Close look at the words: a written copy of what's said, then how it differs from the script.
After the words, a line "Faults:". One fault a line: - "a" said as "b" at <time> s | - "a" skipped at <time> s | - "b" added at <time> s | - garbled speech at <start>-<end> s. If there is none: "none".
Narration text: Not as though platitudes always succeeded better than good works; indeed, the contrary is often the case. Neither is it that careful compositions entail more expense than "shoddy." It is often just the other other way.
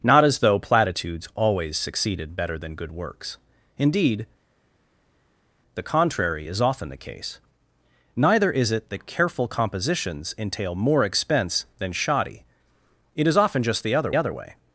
Not as though platitudes always succeeded better than good works; indeed, the contrary is often the case. Neither is it that careful compositions entail more expense than "shoddy." It is often just the other other way.
Faults:
none